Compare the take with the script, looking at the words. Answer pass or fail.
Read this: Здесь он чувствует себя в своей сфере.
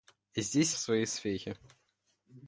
fail